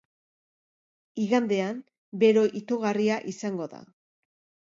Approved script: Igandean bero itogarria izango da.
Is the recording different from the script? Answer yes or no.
no